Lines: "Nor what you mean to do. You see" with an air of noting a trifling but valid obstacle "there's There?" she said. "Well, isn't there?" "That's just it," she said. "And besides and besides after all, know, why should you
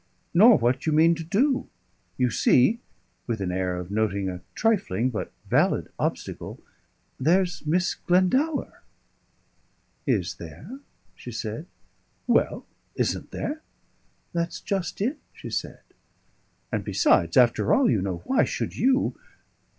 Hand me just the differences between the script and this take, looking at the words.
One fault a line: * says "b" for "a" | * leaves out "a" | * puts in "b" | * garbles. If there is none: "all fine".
* puts in "Miss Glendower Is"
* leaves out "and besides"
* puts in "you"